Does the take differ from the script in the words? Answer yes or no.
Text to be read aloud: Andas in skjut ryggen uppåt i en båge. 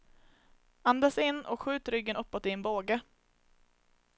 yes